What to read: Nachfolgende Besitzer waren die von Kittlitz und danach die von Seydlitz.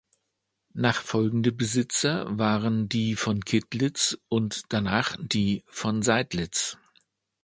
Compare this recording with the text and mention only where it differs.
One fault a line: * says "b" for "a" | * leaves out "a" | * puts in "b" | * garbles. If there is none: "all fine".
all fine